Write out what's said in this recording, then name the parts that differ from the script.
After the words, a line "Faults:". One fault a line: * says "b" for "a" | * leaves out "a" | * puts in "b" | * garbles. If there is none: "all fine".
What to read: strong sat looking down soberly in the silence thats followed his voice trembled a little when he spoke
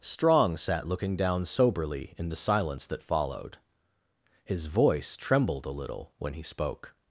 strong sat looking down soberly in the silence that followed his voice trembled a little when he spoke
Faults:
* says "that" for "thats"